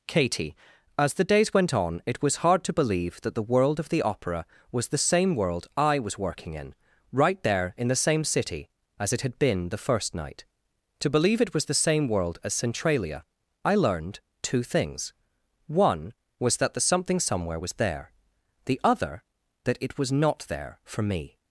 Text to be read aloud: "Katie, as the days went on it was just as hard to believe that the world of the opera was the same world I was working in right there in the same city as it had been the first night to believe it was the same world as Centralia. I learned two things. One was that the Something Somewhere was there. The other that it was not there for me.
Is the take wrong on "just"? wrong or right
wrong